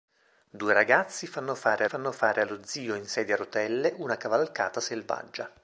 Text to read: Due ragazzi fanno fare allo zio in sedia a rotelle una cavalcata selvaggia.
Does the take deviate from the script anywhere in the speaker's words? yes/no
yes